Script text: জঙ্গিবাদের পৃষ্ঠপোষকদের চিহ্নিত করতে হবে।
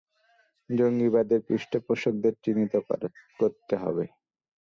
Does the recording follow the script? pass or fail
pass